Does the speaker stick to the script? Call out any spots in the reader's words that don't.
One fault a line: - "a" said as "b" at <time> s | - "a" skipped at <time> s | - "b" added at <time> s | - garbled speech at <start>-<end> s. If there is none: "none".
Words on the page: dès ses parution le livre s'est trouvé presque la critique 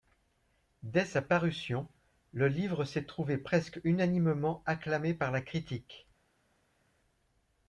- "ses" said as "sa" at 1.1 s
- "unanimement acclamé par" added at 3.8 s